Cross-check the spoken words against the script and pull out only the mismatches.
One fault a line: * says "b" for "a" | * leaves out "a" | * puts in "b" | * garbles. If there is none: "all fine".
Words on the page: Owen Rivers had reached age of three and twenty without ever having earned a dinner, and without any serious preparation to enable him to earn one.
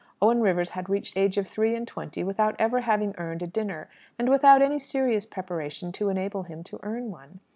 all fine